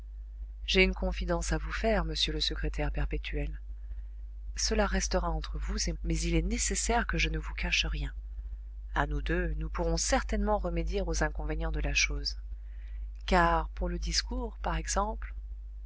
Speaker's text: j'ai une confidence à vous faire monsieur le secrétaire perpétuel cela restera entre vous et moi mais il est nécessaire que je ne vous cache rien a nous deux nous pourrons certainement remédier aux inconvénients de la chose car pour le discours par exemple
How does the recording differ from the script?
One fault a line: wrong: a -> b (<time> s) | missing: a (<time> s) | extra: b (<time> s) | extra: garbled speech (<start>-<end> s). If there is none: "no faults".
missing: moi (5.9 s)